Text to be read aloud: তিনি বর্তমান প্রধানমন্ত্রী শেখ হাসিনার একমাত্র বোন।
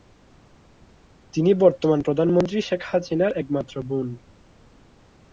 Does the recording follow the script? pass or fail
pass